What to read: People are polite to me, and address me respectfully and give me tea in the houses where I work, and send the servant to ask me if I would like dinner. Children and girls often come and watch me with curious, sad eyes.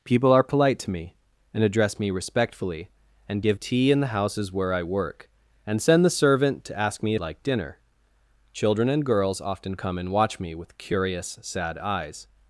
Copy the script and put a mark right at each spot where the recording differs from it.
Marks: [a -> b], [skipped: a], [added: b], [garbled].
People are polite to me, and address me respectfully and give [skipped: me] tea in the houses where I work, and send the servant to ask me [skipped: if I would] like dinner. Children and girls often come and watch me with curious, sad eyes.